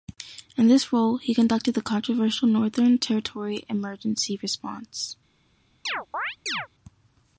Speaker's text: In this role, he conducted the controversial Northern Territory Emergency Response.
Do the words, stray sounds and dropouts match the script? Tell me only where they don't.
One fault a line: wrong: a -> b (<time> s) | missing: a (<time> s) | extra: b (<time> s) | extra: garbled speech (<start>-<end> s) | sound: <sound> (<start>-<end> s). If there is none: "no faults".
sound: chirp (5.9-6.7 s)